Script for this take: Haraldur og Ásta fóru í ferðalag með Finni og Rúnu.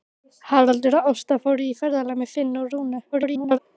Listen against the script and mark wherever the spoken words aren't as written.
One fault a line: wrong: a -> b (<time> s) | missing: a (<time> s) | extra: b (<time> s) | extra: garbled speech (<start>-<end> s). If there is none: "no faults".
extra: garbled speech (3.1-3.6 s)